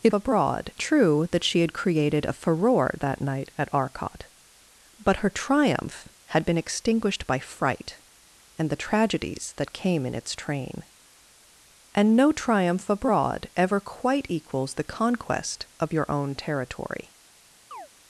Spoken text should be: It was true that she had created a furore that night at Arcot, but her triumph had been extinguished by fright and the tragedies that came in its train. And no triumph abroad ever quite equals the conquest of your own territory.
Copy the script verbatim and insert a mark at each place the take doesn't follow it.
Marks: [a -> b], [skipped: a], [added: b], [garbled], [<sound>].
It [was -> abroad] true that she had created a furore that night at Arcot, but her triumph had been extinguished by fright and the tragedies that came in its train. And no triumph abroad ever quite equals the conquest of your own territory. [chirp]